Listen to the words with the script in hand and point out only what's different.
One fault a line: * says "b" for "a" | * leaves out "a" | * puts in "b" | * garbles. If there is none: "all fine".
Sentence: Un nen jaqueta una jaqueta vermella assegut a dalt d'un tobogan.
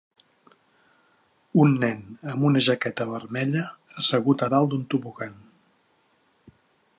* says "amb" for "jaqueta"